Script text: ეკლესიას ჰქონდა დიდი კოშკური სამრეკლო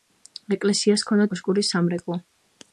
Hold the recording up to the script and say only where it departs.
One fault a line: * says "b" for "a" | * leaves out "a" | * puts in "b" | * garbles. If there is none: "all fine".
* leaves out "დიდი"